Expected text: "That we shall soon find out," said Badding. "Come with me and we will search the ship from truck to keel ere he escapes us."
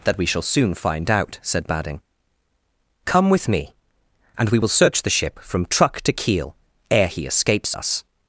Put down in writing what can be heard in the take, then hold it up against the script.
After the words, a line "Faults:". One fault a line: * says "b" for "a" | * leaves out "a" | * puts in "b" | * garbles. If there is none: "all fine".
"That we shall soon find out," said Badding. "Come with me and we will search the ship from truck to keel ere he escapes us."
Faults:
all fine